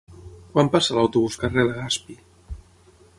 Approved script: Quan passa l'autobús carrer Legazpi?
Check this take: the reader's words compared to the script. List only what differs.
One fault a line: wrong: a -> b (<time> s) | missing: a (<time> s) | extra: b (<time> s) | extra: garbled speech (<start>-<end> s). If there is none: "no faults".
no faults